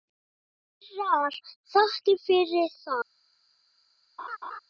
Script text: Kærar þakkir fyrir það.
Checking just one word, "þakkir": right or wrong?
right